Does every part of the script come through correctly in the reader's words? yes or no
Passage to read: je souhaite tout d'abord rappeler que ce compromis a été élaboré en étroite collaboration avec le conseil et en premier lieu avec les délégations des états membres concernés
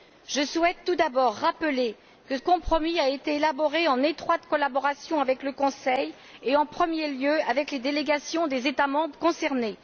no